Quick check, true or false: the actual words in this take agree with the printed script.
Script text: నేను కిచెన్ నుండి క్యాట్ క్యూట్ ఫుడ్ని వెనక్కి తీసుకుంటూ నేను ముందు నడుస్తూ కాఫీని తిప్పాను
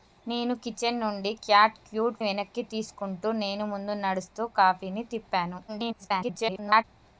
false